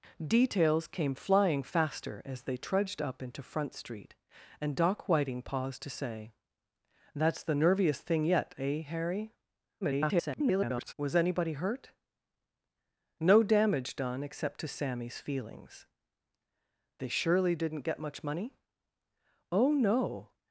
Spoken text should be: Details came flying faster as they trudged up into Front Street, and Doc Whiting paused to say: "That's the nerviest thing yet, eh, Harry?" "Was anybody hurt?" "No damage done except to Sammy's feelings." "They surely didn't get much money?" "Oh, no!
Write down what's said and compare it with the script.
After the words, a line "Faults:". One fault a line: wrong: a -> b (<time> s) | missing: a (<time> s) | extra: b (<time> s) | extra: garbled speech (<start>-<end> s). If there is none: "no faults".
Details came flying faster as they trudged up into Front Street, and Doc Whiting paused to say: "That's the nerviest thing yet, eh, Harry?" [garbled] "Was anybody hurt?" "No damage done except to Sammy's feelings." "They surely didn't get much money?" "Oh, no!
Faults:
extra: garbled speech (9.8-10.9 s)